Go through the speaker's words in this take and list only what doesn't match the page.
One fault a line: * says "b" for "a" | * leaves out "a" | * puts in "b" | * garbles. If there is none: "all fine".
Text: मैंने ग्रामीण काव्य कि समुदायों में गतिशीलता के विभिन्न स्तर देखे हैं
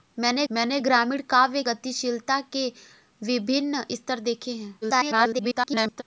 * puts in "मैंने"
* leaves out "कि समुदायों में"
* garbles